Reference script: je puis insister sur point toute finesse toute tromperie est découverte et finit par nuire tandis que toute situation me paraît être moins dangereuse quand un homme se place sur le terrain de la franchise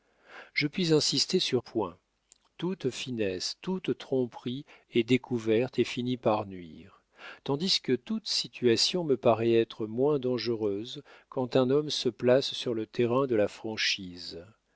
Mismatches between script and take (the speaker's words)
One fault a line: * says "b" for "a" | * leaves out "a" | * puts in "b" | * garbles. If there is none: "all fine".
all fine